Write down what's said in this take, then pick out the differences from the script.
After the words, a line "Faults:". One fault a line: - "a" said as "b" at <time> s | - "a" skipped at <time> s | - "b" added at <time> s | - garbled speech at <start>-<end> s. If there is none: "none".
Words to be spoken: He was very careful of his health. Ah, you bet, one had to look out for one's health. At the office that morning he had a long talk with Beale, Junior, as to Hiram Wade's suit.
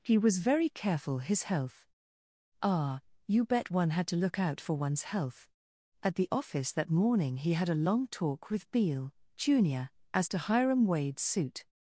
He was very careful his health. Ah, you bet, one had to look out for one's health. At the office that morning he had a long talk with Beale, Junior, as to Hiram Wade's suit.
Faults:
- "of" skipped at 1.2 s